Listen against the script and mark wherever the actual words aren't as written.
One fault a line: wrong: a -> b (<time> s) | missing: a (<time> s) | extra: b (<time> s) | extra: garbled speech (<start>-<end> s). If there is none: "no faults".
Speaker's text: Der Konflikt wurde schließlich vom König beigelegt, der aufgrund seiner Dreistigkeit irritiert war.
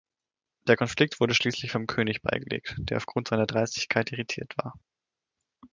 no faults